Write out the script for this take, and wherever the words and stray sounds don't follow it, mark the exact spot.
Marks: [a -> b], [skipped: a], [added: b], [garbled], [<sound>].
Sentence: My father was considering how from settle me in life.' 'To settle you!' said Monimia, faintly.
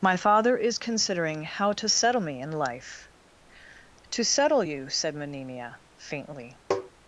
My father [was -> is] considering how [from -> to] settle me in life.' 'To settle you!' said Monimia, faintly. [tap]